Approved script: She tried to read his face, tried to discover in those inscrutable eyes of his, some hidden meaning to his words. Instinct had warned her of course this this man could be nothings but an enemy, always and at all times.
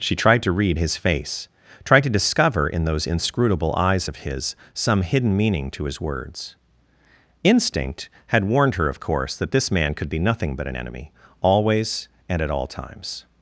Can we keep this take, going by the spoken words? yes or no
no